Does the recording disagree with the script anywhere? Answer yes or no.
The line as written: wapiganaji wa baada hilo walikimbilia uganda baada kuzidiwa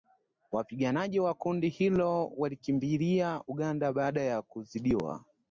yes